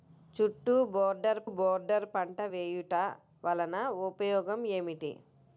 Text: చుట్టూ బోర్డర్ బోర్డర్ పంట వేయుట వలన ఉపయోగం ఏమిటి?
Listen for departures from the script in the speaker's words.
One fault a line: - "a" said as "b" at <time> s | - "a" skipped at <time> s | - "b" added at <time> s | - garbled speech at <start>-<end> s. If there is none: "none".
none